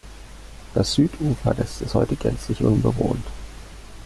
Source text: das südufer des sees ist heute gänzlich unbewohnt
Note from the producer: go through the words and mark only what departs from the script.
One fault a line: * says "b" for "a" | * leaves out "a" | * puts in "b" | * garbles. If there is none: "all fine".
* leaves out "sees"